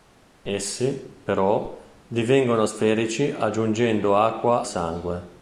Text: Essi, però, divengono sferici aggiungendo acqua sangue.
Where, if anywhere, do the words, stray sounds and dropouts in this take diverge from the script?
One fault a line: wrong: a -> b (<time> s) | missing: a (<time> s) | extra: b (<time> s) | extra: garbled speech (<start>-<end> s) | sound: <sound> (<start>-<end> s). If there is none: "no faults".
no faults